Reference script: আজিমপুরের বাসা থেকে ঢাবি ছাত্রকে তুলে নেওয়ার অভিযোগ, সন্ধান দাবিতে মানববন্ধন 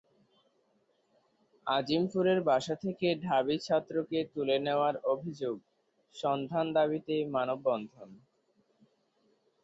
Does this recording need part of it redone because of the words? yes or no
no